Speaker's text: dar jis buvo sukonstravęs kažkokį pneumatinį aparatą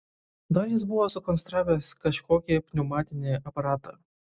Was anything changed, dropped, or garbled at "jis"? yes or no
no